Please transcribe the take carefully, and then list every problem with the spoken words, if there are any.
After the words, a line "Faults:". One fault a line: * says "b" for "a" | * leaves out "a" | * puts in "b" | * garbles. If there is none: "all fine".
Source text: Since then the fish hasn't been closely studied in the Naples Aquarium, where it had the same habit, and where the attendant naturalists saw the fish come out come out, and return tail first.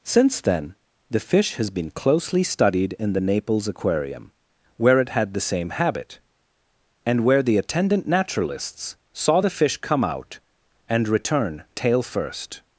Since then the fish has been closely studied in the Naples Aquarium, where it had the same habit, and where the attendant naturalists saw the fish come out, and return tail first.
Faults:
* says "has" for "hasn't"
* leaves out "come out"